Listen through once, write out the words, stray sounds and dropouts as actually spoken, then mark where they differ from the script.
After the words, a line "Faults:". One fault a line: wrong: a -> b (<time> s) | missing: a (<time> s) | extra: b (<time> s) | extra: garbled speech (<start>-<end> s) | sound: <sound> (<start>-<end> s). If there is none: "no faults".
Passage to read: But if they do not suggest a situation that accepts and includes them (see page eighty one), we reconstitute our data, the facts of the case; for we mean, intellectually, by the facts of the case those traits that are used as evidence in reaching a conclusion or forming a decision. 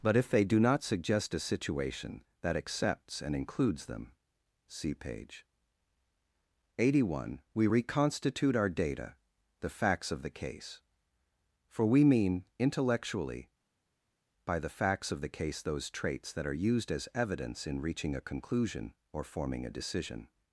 But if they do not suggest a situation that accepts and includes them (see page eighty one), we reconstitute our data, the facts of the case; for we mean, intellectually, by the facts of the case those traits that are used as evidence in reaching a conclusion or forming a decision.
Faults:
no faults